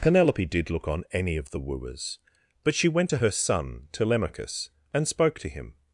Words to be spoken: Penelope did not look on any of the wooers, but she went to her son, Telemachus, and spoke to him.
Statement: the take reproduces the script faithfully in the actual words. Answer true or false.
false